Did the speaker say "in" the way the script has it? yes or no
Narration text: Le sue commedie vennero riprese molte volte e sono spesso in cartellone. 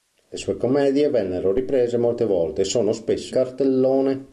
no